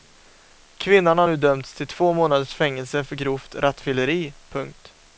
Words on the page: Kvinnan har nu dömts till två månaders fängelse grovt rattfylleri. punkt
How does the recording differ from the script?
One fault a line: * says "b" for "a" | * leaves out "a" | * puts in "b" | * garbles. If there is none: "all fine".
* puts in "för"